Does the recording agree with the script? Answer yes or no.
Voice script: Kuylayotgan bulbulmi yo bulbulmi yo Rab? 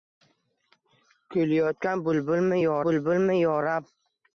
yes